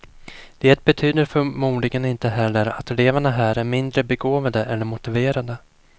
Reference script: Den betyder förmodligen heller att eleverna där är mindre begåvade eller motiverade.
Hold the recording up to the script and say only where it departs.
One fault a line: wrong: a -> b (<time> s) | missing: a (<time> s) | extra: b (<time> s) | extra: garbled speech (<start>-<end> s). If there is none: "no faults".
wrong: Den -> Det (0.6 s)
extra: inte (2.0 s)
wrong: där -> här (3.3 s)